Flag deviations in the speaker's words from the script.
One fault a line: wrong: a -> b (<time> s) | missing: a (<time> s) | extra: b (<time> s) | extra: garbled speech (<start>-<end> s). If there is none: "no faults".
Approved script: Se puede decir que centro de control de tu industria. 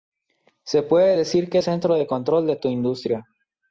no faults